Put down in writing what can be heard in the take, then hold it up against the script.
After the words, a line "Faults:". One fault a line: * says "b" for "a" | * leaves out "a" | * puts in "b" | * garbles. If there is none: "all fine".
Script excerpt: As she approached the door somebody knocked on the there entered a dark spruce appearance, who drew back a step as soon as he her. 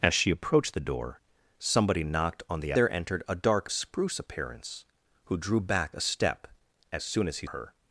As she approached the door somebody knocked on the there entered a dark spruce appearance, who drew back a step as soon as he her.
Faults:
all fine